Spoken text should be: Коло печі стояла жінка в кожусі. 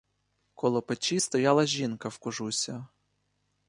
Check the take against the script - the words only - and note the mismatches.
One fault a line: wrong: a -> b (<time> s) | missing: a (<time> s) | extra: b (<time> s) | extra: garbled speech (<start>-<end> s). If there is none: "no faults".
no faults